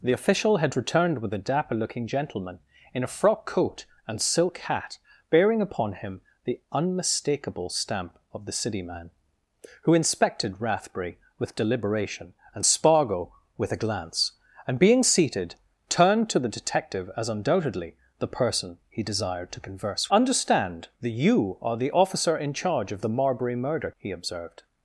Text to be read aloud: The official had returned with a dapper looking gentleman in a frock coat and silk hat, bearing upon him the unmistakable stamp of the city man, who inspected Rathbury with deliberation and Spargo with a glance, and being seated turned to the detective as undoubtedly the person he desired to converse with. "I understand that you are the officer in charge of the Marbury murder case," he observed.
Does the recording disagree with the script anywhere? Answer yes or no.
yes